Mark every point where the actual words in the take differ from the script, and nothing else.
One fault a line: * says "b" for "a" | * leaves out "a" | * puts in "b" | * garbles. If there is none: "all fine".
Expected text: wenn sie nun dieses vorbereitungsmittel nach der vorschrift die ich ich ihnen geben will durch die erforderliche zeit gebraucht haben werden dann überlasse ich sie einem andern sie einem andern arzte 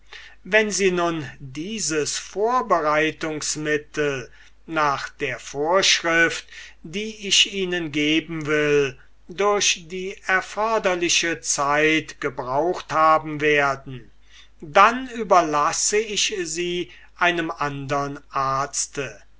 * leaves out "ich"
* leaves out "sie einem andern"